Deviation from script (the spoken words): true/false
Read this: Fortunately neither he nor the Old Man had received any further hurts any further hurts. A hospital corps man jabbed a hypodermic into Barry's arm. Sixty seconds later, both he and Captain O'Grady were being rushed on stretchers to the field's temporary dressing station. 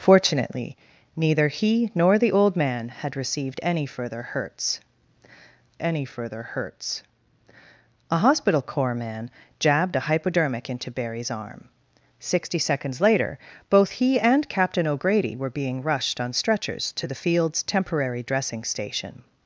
false